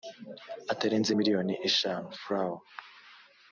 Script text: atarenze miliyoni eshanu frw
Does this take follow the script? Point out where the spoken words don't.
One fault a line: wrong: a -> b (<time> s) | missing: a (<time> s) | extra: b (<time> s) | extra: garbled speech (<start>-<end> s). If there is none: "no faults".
no faults